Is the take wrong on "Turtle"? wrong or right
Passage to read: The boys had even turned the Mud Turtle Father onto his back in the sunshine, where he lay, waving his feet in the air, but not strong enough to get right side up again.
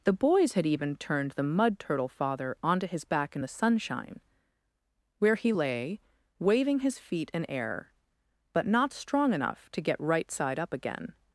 right